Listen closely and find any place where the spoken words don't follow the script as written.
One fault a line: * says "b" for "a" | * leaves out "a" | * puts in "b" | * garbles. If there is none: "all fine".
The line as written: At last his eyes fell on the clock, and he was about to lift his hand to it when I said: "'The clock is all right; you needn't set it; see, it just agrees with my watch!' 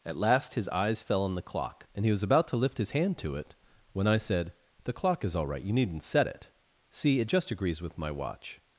all fine